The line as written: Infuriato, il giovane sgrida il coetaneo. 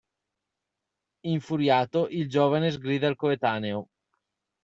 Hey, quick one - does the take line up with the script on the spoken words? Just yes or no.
yes